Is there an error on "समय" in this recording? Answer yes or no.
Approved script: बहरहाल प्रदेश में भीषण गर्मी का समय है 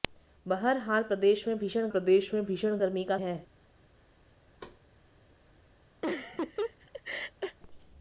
yes